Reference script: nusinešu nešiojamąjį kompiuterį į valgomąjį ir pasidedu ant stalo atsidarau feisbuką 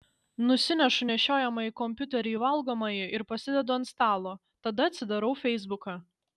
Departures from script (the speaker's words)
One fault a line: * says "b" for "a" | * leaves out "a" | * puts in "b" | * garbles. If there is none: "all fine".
* puts in "tada"